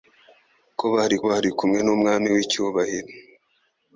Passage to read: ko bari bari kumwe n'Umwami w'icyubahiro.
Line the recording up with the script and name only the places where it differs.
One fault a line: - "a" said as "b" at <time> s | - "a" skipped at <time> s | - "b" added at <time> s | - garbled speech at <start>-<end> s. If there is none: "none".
none